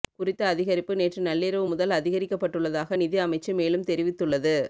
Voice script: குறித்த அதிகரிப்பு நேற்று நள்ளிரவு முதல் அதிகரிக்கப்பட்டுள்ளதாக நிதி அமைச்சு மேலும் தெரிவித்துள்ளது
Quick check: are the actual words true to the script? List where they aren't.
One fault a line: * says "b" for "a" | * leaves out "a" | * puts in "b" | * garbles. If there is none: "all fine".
all fine